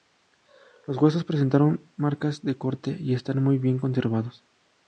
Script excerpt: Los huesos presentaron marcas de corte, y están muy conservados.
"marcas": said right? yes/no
yes